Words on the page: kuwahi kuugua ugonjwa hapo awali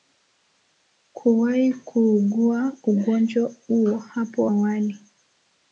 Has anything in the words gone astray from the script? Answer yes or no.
yes